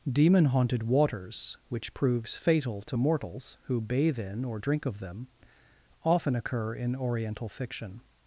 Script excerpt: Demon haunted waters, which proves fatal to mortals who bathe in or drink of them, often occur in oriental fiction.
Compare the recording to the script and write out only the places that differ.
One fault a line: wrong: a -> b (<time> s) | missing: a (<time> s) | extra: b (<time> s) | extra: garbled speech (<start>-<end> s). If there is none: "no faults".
no faults